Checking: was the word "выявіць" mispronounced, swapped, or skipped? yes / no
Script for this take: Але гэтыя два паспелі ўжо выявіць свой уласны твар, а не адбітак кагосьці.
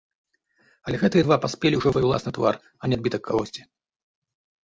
yes